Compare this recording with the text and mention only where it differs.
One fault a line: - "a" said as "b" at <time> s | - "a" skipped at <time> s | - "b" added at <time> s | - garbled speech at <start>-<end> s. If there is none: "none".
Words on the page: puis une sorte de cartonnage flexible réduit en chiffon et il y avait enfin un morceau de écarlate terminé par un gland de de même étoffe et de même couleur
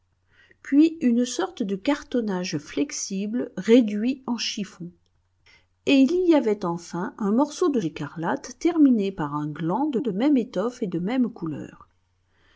none